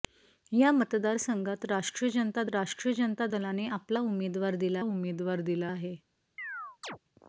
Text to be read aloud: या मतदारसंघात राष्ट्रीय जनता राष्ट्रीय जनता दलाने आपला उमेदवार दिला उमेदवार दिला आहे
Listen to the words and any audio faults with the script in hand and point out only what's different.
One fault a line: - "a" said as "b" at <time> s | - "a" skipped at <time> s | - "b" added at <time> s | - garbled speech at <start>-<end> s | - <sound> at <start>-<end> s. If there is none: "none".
- chirp at 6.4-7.0 s